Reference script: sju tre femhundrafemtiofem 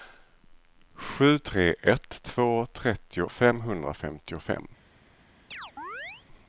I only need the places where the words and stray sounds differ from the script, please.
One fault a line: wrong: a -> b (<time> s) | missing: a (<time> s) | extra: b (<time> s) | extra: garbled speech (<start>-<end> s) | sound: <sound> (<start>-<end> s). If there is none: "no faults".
extra: ett två trettio (1.8 s)
sound: chirp (5.5-6.3 s)